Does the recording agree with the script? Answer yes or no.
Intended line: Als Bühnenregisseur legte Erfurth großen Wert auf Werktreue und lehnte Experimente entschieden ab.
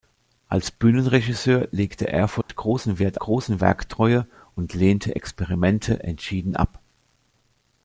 no